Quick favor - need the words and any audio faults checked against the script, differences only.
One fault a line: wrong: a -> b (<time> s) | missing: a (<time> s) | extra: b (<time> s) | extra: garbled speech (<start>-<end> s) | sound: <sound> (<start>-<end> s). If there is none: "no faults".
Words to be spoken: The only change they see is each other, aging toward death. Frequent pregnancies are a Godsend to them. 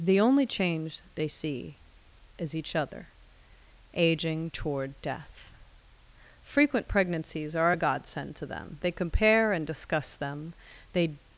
extra: They compare and discuss them they (8.8 s)